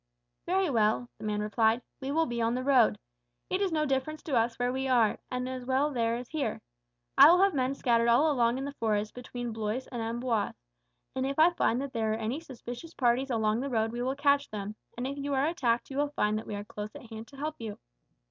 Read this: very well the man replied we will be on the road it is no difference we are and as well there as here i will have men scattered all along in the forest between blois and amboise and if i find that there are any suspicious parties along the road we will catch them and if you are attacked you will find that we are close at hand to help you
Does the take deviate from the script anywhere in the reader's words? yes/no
yes